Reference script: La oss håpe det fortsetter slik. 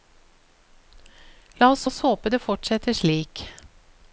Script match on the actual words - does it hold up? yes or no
no